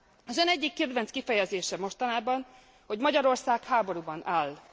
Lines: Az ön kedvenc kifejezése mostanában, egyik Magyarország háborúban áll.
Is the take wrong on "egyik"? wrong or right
wrong